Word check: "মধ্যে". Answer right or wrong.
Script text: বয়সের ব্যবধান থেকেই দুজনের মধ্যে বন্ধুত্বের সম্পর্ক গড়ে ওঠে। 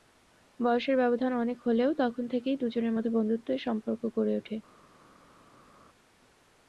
right